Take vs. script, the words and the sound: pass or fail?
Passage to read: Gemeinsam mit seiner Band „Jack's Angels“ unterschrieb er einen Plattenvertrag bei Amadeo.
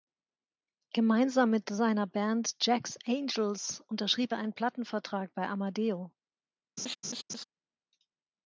fail